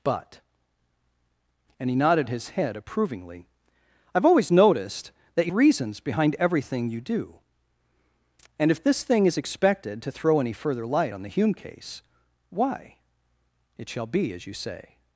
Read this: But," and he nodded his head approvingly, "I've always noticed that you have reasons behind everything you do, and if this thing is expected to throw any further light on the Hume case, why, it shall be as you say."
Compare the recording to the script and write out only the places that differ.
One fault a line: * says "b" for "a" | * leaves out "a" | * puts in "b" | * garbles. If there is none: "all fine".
* leaves out "have"